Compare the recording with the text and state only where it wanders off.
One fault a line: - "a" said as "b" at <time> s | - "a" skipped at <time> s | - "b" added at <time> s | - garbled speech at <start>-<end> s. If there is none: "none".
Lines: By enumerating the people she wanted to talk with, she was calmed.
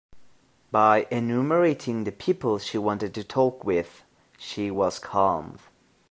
none